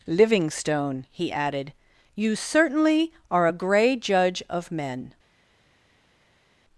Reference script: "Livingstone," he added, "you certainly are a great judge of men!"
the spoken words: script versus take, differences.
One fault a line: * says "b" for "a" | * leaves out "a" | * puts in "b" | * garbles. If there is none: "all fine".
* says "grey" for "great"